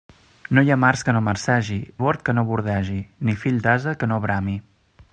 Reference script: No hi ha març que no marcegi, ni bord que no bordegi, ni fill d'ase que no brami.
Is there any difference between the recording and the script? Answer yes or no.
yes